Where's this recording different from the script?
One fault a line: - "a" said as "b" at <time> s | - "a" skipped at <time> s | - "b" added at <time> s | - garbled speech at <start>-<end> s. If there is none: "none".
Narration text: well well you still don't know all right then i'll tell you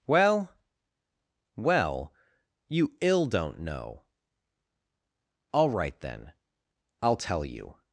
- "still" said as "ill" at 3.0 s